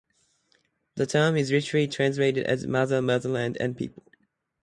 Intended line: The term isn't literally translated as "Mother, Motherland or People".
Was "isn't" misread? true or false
true